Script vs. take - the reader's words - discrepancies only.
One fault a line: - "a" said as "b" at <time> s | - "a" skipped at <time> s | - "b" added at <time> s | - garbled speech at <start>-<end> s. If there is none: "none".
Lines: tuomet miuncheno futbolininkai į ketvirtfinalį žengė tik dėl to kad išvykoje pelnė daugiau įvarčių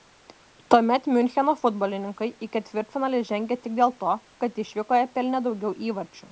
none